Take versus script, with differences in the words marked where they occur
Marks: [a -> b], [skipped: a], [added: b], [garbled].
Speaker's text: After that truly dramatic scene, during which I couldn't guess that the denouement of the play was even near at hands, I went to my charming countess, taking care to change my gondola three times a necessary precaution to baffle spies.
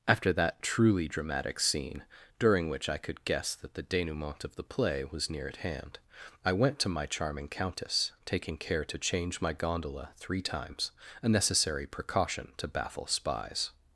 After that truly dramatic scene, during which I [couldn't -> could] guess that the denouement of the play was [skipped: even] near at [hands, -> hand] I went to my charming countess, taking care to change my gondola three times a necessary precaution to baffle spies.